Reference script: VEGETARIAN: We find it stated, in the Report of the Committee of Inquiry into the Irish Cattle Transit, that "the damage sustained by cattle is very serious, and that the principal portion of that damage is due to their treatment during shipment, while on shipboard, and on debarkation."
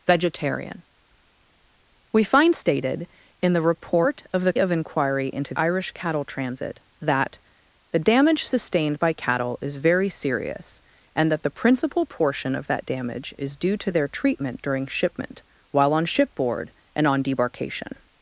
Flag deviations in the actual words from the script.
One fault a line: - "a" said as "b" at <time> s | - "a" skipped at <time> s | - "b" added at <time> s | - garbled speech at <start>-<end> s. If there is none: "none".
- "it" skipped at 2.5 s
- "Committee" skipped at 4.5 s
- "the" skipped at 5.5 s